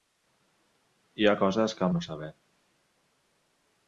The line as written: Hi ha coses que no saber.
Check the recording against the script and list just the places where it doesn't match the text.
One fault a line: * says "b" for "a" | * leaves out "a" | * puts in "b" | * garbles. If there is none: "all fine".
all fine